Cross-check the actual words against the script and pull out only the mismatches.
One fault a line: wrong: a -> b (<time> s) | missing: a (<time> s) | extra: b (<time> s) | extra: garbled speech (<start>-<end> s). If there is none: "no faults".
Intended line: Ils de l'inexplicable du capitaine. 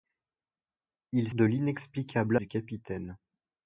no faults